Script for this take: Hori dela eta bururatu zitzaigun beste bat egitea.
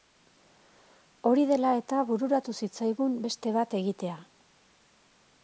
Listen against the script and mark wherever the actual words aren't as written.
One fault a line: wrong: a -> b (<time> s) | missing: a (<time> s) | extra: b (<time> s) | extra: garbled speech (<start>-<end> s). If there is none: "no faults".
no faults